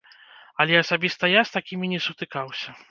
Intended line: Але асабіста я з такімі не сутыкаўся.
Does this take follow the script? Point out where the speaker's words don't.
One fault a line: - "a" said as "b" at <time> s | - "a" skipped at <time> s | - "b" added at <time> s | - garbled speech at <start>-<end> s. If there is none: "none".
none